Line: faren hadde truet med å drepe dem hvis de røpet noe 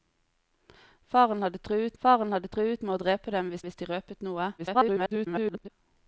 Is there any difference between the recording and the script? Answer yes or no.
yes